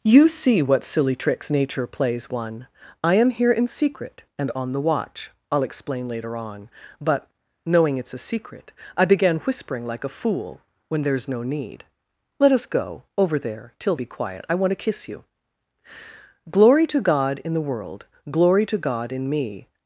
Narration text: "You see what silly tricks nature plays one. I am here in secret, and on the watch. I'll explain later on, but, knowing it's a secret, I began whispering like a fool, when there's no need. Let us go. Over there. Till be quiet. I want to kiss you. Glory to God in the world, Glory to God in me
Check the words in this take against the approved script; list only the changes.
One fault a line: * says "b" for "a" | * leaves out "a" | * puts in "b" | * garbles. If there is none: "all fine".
all fine